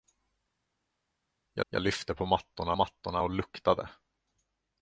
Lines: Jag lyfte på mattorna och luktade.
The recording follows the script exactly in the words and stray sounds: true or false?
false